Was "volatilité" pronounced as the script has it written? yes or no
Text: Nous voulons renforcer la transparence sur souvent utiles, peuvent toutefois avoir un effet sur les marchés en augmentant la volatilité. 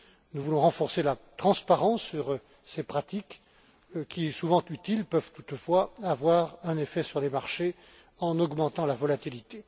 yes